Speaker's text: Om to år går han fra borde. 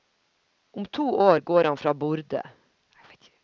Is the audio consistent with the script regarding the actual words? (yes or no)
yes